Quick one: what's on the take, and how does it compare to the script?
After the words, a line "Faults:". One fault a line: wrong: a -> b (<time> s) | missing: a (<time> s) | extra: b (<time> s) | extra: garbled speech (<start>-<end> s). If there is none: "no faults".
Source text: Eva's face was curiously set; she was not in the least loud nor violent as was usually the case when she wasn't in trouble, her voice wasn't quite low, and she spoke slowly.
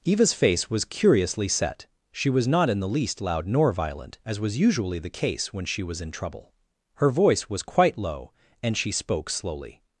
Eva's face was curiously set; she was not in the least loud nor violent as was usually the case when she was in trouble, her voice was quite low, and she spoke slowly.
Faults:
wrong: wasn't -> was (5.8 s)
wrong: wasn't -> was (7.5 s)